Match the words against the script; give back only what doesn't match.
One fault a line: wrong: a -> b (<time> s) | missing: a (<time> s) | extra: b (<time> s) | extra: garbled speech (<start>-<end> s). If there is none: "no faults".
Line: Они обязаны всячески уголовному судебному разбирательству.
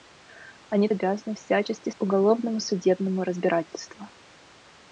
no faults